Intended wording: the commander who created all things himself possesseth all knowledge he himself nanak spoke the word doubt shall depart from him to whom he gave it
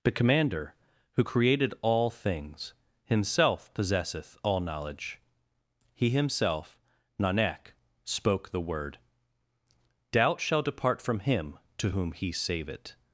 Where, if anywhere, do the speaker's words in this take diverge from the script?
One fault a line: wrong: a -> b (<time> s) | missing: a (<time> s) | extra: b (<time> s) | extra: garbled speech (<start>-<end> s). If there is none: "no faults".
wrong: gave -> save (12.3 s)